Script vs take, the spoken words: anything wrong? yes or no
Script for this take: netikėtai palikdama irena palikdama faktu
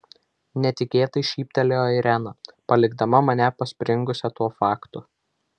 yes